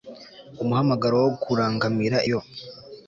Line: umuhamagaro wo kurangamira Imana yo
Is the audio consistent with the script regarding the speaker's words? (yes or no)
no